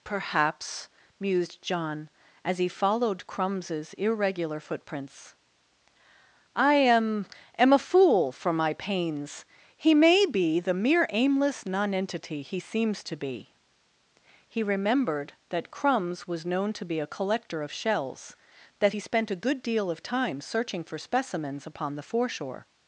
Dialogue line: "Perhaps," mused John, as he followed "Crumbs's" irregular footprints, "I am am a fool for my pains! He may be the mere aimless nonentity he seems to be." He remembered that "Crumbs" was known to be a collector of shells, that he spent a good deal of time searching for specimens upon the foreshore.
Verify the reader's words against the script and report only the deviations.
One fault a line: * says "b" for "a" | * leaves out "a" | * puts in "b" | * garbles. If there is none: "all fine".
all fine